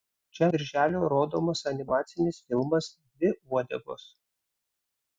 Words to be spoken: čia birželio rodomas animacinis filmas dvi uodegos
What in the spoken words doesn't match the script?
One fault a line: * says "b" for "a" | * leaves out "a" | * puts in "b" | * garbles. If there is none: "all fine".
all fine